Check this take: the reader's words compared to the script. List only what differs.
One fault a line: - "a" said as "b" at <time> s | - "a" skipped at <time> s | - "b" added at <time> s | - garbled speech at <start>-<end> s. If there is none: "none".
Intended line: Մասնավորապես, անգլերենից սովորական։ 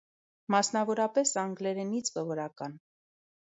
none